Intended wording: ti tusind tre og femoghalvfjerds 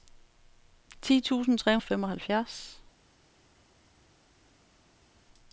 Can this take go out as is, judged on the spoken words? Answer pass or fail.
pass